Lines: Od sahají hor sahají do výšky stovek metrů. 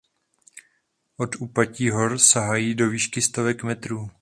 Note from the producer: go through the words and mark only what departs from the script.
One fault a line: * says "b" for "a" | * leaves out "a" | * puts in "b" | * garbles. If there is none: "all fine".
* says "úpatí" for "sahají"